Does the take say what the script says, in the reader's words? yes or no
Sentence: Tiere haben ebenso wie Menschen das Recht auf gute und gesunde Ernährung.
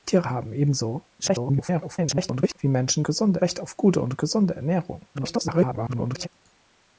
no